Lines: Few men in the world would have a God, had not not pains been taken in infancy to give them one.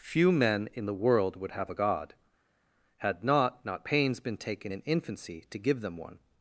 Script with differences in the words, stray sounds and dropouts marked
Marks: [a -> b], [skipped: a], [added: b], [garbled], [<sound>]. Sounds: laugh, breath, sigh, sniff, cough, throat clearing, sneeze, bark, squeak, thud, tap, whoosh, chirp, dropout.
Few men in the world would have a God, had not not pains been taken in infancy to give them one.